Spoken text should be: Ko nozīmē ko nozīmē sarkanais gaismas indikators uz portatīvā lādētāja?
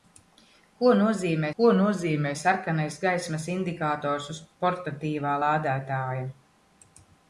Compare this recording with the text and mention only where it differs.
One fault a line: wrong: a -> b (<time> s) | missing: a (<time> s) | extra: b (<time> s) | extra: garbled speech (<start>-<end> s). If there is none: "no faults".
no faults